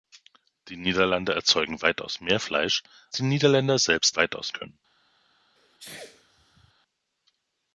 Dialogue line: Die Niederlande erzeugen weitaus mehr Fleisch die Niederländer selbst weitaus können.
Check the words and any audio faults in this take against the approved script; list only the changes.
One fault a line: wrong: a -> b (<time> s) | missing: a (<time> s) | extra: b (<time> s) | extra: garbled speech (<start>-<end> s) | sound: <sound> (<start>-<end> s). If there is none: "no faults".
sound: sneeze (5.6-6.7 s)